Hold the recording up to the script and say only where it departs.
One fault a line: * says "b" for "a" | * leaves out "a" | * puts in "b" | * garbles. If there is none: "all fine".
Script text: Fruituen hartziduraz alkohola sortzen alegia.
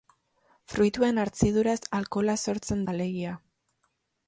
all fine